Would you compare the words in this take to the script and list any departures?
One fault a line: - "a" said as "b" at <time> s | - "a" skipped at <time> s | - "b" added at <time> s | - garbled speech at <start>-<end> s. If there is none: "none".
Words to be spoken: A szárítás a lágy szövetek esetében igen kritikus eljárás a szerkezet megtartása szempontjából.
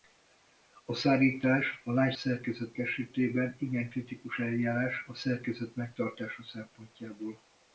- "szövetek" said as "szerkezet" at 2.1 s